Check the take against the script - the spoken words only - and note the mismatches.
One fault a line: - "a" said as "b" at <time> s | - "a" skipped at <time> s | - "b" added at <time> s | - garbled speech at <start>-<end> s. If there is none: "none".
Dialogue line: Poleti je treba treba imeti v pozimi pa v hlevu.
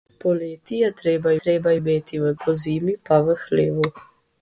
none